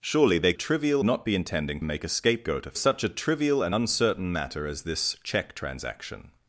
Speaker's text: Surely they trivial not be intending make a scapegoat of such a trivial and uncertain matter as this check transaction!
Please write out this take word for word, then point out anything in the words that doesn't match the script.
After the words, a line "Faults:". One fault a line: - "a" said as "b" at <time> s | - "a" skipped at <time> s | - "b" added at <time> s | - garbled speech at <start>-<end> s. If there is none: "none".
Surely they trivial not be intending make a scapegoat of such a trivial and uncertain matter as this check transaction!
Faults:
none